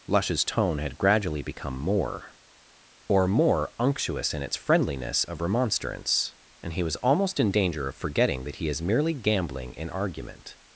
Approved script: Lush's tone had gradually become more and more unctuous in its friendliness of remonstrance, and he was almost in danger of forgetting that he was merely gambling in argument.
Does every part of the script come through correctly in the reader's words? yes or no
no